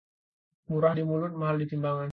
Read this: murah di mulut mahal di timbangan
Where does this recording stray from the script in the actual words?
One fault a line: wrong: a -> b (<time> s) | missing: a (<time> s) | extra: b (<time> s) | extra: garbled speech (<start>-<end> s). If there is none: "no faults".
no faults